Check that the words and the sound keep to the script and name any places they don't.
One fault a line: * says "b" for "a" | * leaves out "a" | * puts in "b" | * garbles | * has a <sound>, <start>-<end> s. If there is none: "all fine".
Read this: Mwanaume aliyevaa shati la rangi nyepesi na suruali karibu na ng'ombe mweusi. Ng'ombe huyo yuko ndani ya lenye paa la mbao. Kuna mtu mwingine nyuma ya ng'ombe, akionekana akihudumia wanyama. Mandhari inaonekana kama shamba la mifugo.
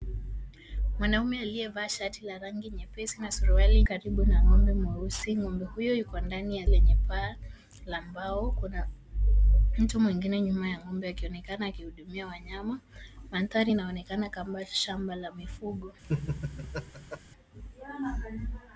* has a laugh, 16.0-17.2 s